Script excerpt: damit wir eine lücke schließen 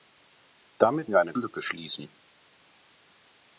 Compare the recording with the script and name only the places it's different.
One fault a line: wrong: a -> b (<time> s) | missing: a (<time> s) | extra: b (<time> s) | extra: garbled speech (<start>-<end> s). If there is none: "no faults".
no faults